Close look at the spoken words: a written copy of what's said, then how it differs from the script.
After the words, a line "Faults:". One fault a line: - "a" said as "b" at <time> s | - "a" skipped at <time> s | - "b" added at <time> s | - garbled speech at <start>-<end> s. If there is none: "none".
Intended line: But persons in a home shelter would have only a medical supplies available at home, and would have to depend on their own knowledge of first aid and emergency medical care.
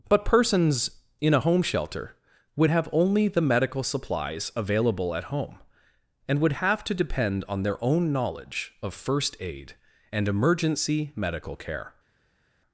But persons in a home shelter would have only the medical supplies available at home, and would have to depend on their own knowledge of first aid and emergency medical care.
Faults:
- "a" said as "the" at 3.3 s